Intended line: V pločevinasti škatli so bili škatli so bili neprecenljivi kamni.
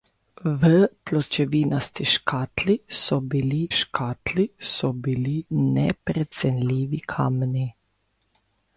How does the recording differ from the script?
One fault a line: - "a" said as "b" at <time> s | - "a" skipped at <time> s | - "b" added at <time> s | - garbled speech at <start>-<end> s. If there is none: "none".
none